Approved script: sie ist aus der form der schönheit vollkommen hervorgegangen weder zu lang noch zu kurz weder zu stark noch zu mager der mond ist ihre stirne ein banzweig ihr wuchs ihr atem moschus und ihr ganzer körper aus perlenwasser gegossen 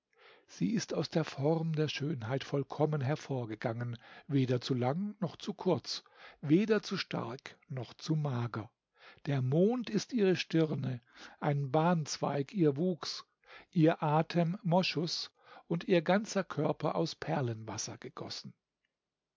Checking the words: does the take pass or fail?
pass